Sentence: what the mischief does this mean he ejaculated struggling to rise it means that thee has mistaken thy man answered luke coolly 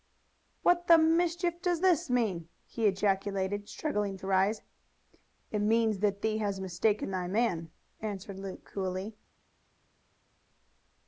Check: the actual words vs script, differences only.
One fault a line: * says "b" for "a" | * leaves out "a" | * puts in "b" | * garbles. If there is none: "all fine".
all fine